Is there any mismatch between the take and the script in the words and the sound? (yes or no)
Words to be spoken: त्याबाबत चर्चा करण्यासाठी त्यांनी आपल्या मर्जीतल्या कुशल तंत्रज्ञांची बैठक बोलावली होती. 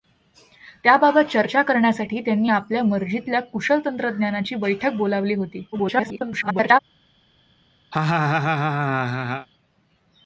yes